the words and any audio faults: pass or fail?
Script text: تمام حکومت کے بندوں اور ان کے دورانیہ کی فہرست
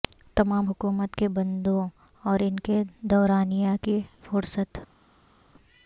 pass